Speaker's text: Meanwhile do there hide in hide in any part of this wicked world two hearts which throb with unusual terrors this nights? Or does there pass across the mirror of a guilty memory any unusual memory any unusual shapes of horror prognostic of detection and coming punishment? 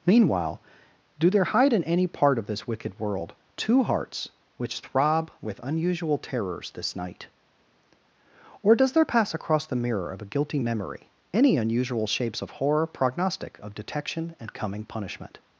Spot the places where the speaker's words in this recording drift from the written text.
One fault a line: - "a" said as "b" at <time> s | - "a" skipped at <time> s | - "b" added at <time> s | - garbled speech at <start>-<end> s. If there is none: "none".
- "hide in" skipped at 1.8 s
- "nights" said as "night" at 6.9 s
- "memory any unusual" skipped at 12.1 s